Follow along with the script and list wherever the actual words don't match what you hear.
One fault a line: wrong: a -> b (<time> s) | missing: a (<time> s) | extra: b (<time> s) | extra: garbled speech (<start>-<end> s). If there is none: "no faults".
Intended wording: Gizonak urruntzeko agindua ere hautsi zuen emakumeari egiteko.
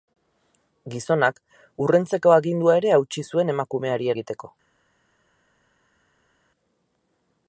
no faults